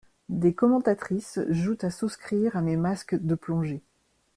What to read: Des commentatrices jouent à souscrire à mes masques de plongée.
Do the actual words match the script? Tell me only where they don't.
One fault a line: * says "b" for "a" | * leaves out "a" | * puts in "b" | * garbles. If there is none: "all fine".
all fine